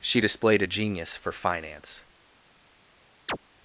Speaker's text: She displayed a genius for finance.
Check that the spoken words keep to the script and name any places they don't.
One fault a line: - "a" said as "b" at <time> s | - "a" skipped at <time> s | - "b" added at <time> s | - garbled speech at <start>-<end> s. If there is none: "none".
none